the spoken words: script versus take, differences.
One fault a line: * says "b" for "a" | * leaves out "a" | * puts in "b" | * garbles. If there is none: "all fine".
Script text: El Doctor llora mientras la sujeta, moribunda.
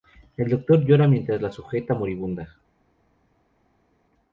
all fine